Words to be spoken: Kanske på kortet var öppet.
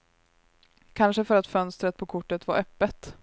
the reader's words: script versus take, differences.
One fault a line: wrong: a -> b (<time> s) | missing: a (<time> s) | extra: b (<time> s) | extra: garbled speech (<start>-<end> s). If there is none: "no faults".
extra: för att fönstret (1.2 s)